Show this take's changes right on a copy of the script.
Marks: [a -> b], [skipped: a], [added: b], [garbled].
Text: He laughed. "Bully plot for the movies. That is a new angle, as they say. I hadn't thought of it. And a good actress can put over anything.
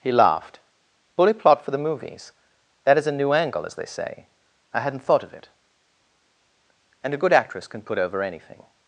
He laughed. "Bully plot for the movies. That is a new angle, as they say. I hadn't thought of it. And a good actress can put over anything.